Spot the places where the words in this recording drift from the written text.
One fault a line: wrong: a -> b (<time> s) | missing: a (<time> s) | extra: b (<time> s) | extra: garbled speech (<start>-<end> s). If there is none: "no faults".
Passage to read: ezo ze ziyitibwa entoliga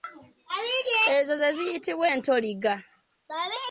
no faults